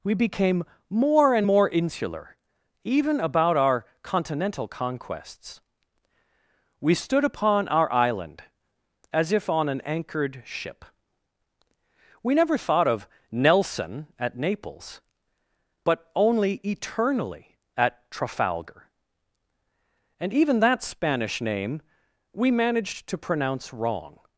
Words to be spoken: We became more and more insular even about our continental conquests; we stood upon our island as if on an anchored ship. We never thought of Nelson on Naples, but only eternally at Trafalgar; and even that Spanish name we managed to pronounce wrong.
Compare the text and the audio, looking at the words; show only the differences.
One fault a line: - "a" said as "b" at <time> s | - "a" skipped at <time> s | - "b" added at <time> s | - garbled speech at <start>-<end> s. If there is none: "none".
- "on" said as "at" at 14.2 s